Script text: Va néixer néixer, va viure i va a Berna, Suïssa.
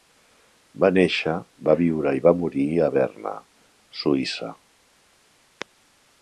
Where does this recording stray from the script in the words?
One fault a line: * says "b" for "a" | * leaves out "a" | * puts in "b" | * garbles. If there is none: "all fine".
* leaves out "néixer"
* puts in "morir"